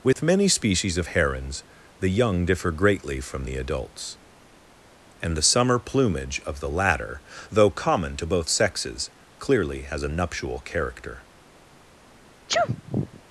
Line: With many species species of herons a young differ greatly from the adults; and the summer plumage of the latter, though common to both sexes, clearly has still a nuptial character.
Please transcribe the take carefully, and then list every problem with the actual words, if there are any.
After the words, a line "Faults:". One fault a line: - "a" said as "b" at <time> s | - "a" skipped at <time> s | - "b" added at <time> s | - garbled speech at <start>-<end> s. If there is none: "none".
With many species of herons the young differ greatly from the adults; and the summer plumage of the latter, though common to both sexes, clearly has a nuptial character.
Faults:
- "species" skipped at 1.0 s
- "a" said as "the" at 2.0 s
- "still" skipped at 10.0 s